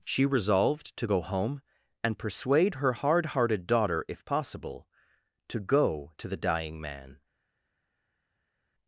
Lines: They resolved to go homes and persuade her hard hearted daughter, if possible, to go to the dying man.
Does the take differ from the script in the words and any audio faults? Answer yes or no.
yes